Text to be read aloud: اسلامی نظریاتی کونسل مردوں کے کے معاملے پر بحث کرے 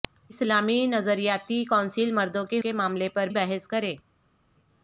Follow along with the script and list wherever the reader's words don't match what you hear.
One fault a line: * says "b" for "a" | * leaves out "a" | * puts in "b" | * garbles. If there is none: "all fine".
all fine